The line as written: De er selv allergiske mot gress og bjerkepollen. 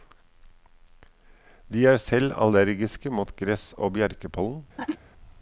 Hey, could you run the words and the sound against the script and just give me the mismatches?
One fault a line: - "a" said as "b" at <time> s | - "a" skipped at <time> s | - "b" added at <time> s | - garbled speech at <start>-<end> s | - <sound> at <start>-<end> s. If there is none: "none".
- sneeze at 4.8-5.0 s